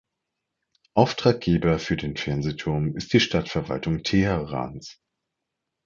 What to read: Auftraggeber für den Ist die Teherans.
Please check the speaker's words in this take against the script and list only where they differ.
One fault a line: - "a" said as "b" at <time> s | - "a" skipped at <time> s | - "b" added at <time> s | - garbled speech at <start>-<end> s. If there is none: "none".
- "Fernsehturm" added at 2.2 s
- "Stadtverwaltung" added at 3.2 s